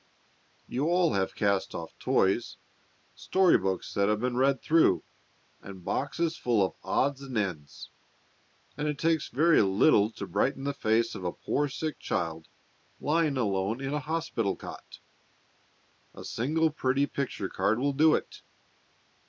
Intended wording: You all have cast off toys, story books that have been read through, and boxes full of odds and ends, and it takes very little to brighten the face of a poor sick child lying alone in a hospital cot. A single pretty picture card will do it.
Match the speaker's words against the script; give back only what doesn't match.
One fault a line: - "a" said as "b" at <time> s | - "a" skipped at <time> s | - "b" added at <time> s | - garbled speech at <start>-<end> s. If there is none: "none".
none